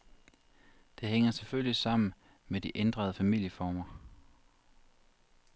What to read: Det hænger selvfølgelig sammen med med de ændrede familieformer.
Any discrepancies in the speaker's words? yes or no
yes